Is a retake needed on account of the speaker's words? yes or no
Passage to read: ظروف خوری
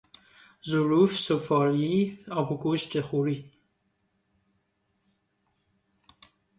yes